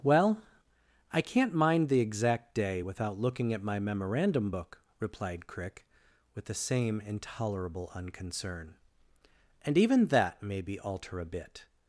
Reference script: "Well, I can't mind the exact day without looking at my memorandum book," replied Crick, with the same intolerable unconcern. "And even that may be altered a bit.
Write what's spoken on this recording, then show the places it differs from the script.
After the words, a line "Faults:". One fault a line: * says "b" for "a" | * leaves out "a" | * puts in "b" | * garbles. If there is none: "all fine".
"Well, I can't mind the exact day without looking at my memorandum book," replied Crick, with the same intolerable unconcern. "And even that may be alter a bit.
Faults:
* says "alter" for "altered"